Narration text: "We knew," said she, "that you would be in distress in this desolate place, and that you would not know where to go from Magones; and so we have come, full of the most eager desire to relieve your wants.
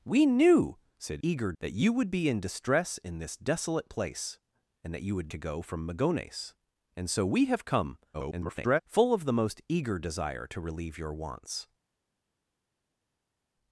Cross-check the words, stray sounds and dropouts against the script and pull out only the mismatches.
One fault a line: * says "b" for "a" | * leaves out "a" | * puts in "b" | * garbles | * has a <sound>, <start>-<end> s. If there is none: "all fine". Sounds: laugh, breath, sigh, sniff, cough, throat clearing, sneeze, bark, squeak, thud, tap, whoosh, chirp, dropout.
* says "eager" for "she"
* leaves out "not know where"
* garbles